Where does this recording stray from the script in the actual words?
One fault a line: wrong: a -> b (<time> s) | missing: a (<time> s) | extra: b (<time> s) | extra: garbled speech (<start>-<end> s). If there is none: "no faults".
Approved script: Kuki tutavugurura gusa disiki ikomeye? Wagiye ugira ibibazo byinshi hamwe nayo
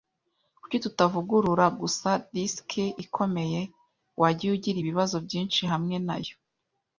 no faults